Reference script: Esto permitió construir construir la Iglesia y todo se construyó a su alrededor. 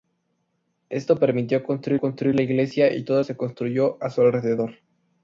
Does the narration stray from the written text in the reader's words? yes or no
no